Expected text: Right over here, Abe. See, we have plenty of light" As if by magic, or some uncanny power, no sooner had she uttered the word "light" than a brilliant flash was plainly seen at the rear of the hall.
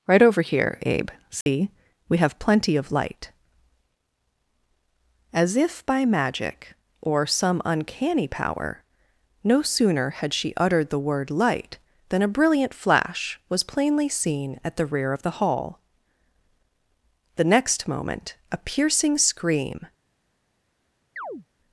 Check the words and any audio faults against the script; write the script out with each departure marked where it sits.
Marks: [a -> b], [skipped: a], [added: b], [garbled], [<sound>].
Right over here, Abe. See, [dropout] we have plenty of light" As if by magic, or some uncanny power, no sooner had she uttered the word "light" than a brilliant flash was plainly seen at the rear of the hall. [added: The next moment a piercing scream] [chirp]